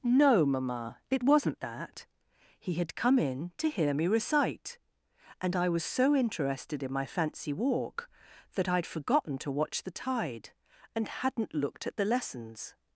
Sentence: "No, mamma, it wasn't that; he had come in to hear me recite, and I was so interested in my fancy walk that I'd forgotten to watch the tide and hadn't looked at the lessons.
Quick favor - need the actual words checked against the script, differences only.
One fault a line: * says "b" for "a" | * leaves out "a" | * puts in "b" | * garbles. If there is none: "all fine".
all fine